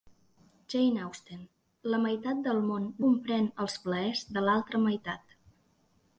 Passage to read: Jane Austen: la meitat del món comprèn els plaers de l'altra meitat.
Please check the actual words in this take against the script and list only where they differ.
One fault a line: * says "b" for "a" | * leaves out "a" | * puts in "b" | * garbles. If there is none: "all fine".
all fine